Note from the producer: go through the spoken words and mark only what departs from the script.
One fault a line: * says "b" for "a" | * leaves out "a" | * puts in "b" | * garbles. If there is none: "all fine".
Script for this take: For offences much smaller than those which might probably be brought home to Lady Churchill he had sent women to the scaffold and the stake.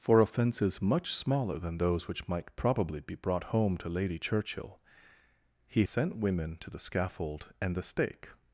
* leaves out "had"